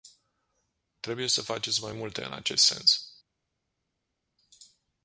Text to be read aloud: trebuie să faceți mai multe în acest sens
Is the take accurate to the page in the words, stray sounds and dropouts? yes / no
yes